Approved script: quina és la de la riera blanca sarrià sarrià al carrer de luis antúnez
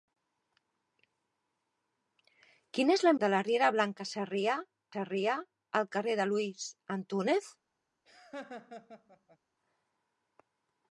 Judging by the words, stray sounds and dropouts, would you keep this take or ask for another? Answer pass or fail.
fail